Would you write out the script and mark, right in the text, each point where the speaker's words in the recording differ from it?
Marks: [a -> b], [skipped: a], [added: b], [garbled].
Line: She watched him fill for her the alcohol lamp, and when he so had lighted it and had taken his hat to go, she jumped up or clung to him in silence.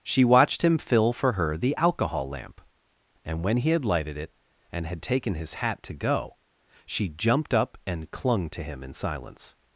She watched him fill for her the alcohol lamp, and when he [skipped: so] had lighted it and had taken his hat to go, she jumped up [or -> and] clung to him in silence.